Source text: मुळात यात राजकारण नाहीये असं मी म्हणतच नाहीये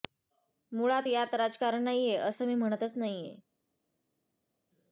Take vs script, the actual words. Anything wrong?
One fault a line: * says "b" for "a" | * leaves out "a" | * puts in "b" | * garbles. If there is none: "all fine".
all fine